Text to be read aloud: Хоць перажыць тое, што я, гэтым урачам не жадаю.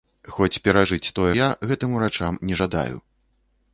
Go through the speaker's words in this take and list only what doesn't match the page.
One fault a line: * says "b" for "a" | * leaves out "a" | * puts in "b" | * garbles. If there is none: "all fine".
* leaves out "што"